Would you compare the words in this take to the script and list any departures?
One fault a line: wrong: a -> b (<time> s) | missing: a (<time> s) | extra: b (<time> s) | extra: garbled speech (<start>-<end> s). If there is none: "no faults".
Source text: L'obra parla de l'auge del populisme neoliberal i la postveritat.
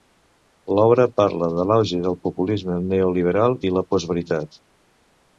no faults